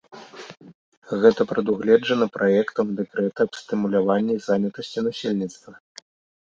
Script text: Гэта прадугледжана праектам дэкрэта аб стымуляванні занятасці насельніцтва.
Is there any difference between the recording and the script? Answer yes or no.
no